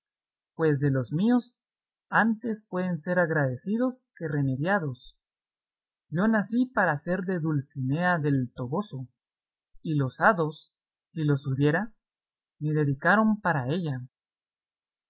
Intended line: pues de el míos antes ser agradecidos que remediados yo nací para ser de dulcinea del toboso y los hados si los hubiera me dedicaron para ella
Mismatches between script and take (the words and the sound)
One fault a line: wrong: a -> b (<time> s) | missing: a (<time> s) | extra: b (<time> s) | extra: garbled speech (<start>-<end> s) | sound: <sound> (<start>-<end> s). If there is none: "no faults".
wrong: el -> los (0.9 s)
extra: pueden (2.7 s)